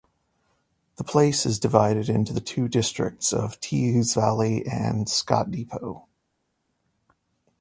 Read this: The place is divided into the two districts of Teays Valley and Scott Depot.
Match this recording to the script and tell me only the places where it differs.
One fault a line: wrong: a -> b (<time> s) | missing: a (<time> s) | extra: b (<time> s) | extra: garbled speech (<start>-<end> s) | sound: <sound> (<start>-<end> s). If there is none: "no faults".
no faults